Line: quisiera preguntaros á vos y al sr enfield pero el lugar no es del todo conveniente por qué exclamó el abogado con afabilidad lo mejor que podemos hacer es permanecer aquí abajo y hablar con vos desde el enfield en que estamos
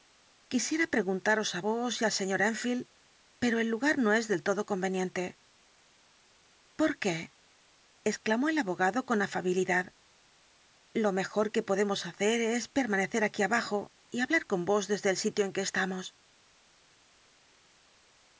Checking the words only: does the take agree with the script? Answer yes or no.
no